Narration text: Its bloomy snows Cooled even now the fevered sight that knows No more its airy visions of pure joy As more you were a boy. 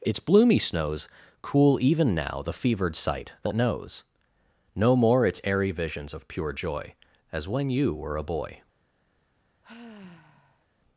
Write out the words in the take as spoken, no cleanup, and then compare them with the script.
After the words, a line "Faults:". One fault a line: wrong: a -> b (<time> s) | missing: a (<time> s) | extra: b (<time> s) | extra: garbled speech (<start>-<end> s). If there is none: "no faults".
Its bloomy snows Cool even now the fevered sight that knows No more its airy visions of pure joy As when you were a boy.
Faults:
wrong: Cooled -> Cool (1.4 s)
wrong: more -> when (7.5 s)